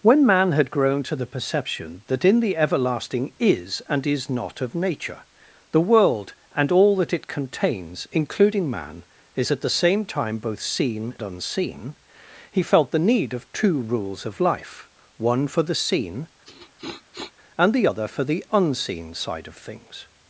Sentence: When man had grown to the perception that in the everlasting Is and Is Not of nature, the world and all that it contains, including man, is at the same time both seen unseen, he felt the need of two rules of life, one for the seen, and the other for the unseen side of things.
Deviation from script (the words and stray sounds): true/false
true